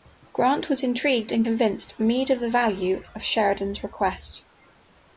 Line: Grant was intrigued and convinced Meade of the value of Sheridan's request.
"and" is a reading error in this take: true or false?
false